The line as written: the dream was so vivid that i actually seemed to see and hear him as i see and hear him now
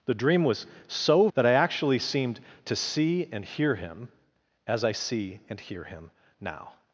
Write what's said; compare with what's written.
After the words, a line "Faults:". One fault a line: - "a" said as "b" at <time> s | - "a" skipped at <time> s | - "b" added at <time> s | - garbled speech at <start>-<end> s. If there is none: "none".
the dream was so that i actually seemed to see and hear him as i see and hear him now
Faults:
- "vivid" skipped at 1.3 s